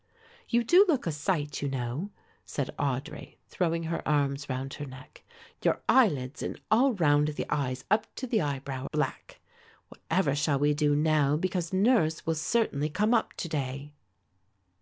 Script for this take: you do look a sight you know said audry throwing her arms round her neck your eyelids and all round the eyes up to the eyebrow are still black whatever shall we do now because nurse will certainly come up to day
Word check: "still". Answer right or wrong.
wrong